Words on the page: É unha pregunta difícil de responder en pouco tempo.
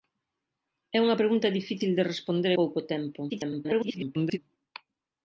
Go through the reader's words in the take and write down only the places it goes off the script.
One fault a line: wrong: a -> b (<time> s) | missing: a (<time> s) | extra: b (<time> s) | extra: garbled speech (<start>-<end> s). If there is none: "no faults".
missing: en (2.5 s)
extra: garbled speech (3.3-4.4 s)